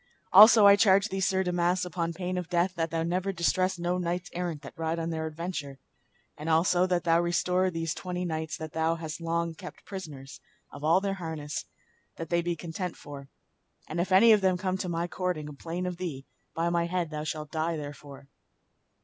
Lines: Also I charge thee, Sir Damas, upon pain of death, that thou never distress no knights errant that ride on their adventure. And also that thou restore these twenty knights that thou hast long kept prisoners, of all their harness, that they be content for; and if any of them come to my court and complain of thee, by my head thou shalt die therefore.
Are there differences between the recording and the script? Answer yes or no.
no